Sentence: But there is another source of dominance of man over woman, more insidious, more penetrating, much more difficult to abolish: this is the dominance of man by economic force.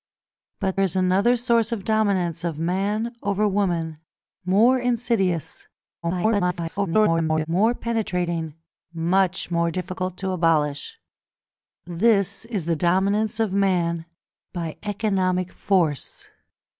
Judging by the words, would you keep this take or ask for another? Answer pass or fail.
fail